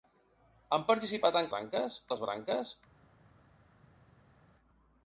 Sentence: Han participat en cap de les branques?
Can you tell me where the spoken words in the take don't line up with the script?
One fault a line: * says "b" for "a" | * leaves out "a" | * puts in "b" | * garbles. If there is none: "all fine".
* says "branques" for "cap"